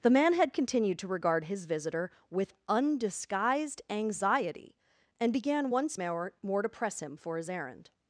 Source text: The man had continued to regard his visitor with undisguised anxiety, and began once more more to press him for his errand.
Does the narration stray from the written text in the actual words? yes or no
no